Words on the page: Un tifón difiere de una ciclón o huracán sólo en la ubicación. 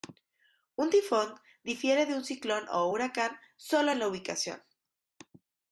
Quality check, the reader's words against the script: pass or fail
fail